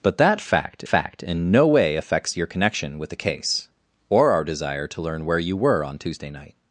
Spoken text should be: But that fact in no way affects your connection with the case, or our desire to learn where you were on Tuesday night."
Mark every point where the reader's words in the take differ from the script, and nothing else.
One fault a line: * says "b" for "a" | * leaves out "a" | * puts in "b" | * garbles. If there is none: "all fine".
* puts in "fact"